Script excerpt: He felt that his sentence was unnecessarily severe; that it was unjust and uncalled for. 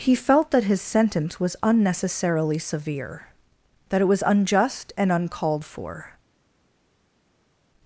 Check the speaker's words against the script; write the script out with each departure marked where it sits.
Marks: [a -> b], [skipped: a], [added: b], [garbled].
He felt that his sentence was unnecessarily severe; that it was unjust and uncalled for.